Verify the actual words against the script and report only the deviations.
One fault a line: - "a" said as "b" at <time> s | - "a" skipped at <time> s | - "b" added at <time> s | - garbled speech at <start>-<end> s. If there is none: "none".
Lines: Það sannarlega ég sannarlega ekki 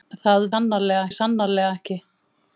none